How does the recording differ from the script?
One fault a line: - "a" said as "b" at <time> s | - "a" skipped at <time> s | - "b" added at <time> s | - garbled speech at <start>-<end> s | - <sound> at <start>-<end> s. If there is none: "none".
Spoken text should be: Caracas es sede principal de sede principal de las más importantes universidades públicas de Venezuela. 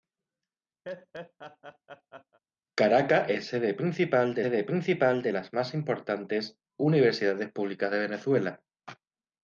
- laugh at 0.8-2.4 s